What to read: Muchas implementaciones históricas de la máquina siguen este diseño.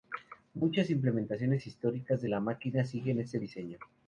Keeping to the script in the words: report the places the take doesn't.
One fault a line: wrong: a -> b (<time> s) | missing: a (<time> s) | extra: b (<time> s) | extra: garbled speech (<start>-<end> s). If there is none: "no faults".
no faults